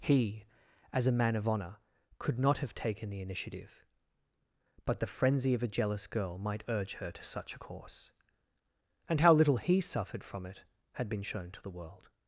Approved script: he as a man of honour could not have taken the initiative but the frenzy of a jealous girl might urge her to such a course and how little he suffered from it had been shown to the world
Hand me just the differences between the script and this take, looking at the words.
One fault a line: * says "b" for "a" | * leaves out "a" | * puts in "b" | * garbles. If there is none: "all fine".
all fine